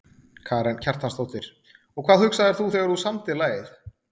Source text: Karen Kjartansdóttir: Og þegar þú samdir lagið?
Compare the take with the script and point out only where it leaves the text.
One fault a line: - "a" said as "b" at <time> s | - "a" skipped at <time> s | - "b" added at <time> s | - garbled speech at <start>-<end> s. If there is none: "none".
- "hvað hugsaðir þú" added at 2.1 s